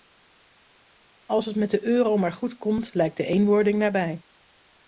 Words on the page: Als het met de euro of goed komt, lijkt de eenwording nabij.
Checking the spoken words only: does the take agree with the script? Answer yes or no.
no